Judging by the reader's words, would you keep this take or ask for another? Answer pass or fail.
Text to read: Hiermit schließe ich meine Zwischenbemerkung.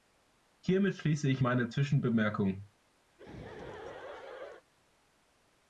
pass